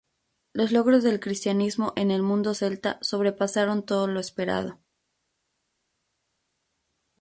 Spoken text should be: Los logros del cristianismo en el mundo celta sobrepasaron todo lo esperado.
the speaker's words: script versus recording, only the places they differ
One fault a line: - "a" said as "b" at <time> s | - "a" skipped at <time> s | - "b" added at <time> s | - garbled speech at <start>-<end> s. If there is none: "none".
none